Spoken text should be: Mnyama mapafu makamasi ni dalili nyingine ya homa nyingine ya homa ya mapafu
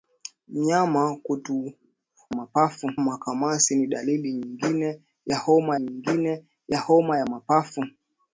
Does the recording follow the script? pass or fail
pass